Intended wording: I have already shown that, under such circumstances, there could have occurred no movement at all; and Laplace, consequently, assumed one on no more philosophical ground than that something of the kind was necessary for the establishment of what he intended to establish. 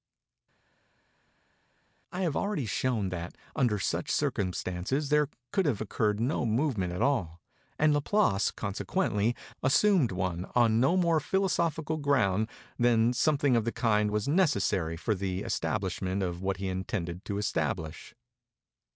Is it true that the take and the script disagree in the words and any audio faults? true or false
false